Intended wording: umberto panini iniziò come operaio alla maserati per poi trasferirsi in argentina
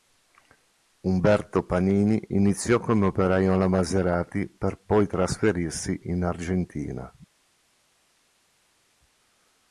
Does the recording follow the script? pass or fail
pass